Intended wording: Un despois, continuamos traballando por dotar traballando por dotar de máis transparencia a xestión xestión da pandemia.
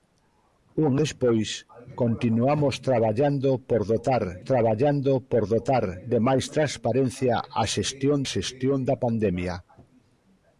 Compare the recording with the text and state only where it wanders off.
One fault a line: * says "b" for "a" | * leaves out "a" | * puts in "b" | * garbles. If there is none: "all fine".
all fine